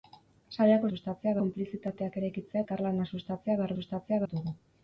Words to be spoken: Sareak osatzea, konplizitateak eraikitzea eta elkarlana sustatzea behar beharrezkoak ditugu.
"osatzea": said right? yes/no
no